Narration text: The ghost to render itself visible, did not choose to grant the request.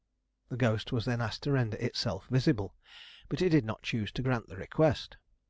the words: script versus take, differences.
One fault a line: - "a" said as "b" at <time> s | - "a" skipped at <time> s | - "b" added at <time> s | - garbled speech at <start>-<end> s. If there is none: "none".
- "was then asked" added at 0.9 s
- "but it" added at 3.3 s